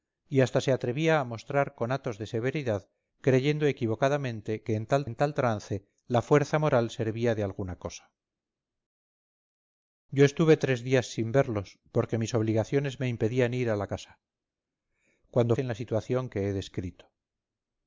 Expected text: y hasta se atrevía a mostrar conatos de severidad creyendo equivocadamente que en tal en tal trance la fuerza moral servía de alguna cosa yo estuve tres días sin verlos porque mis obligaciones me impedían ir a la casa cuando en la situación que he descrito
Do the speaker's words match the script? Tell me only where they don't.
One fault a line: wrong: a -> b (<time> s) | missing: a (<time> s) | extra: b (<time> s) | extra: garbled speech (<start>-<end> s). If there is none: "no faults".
no faults